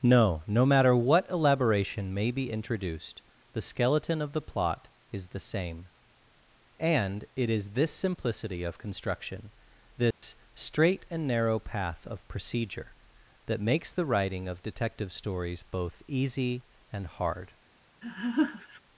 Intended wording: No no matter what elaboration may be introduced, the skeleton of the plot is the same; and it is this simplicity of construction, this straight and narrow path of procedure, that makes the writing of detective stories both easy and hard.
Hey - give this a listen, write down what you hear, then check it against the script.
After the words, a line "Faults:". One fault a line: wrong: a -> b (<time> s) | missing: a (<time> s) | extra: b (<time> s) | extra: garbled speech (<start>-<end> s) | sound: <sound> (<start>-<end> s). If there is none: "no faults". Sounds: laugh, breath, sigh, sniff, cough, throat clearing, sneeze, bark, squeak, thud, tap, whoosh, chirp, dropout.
No no matter what elaboration may be introduced, the skeleton of the plot is the same; and it is this simplicity of construction, this straight and narrow path of procedure, that makes the writing of detective stories both easy and hard.
Faults:
sound: dropout (10.1-10.2 s)
sound: laugh (18.0-18.8 s)